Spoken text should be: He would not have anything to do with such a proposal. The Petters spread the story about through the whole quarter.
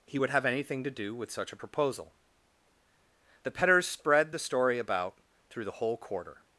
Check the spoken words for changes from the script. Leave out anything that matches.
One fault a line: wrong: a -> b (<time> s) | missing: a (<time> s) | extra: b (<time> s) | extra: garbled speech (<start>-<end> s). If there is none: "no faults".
missing: not (0.3 s)